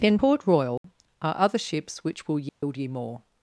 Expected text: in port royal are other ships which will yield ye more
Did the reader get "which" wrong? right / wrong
right